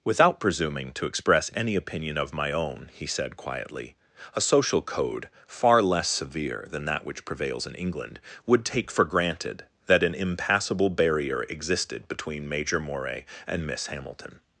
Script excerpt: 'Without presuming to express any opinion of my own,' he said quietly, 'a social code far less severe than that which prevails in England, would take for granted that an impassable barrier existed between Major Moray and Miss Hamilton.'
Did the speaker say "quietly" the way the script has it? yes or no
yes